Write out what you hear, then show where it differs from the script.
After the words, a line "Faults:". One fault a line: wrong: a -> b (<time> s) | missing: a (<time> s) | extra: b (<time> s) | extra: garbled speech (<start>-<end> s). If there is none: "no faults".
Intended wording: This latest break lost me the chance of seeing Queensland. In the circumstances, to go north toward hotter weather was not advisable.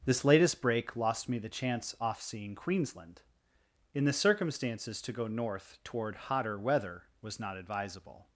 This latest break lost me the chance off seeing Queensland. In the circumstances, to go north toward hotter weather was not advisable.
Faults:
wrong: of -> off (2.0 s)